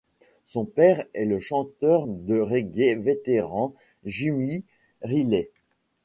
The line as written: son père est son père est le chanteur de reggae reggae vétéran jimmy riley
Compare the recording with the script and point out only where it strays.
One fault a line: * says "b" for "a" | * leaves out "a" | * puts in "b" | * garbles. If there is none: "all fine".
* leaves out "son père est"
* leaves out "reggae"